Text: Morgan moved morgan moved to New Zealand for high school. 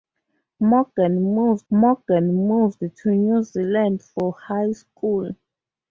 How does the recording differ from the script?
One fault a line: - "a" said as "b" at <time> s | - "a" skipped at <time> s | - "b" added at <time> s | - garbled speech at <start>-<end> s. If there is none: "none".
none